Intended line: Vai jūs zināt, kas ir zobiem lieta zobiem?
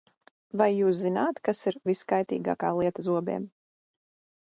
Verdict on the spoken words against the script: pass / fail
fail